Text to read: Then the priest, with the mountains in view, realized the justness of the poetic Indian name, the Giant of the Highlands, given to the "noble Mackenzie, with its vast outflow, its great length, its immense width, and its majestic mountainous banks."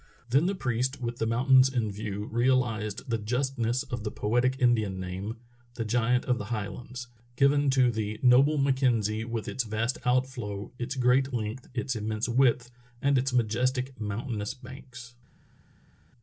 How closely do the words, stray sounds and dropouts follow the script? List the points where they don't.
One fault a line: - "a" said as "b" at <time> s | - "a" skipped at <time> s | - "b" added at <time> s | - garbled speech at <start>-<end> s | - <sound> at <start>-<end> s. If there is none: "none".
none